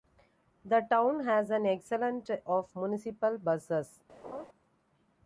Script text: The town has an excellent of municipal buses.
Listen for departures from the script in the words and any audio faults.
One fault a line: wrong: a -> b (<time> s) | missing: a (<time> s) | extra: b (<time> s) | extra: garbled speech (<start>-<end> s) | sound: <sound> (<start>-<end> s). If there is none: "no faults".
sound: laugh (4.2-4.5 s)